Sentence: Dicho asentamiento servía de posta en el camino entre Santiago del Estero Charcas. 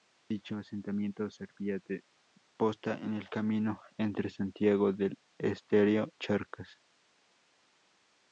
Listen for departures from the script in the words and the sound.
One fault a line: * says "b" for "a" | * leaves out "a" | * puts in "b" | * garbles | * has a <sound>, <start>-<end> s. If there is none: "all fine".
all fine